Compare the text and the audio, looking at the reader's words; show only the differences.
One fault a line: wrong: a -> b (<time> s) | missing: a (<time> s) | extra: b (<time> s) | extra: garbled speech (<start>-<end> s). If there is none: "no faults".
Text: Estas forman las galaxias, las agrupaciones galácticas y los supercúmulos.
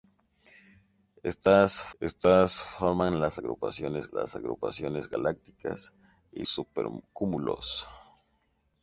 extra: estas (2.0 s)
wrong: galaxias -> agrupaciones (3.3 s)
missing: los (6.4 s)